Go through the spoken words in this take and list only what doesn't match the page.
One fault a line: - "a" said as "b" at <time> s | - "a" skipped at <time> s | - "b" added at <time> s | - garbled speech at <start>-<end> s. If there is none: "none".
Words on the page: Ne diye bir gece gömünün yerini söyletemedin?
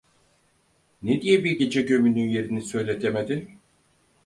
none